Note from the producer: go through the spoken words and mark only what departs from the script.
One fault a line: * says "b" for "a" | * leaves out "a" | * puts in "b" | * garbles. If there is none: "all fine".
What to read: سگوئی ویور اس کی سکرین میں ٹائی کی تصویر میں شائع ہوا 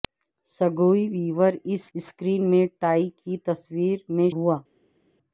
* leaves out "کی"
* leaves out "شائع"